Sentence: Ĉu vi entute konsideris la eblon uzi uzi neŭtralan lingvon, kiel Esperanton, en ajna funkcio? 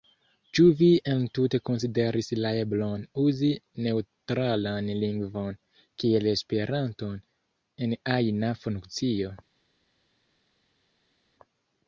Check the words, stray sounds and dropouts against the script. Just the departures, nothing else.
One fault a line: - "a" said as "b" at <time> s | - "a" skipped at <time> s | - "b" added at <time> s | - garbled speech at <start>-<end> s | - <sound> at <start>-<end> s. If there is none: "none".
- "uzi" skipped at 3.5 s